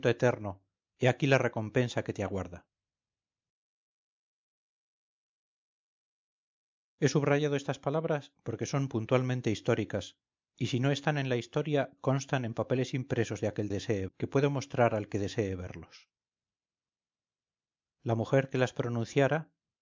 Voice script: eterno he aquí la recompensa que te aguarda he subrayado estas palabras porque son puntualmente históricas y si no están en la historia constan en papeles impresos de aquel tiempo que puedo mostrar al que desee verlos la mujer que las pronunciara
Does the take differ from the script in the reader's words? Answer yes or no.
yes